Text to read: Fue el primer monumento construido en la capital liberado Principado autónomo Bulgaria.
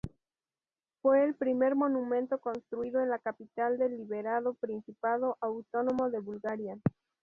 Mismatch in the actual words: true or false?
true